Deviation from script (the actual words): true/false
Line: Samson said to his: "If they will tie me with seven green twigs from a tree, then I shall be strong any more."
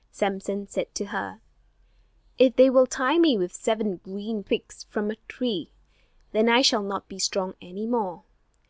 true